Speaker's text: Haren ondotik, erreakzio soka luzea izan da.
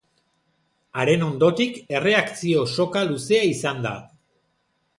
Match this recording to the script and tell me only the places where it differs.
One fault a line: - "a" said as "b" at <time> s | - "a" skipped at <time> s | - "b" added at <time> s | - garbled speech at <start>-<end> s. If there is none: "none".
none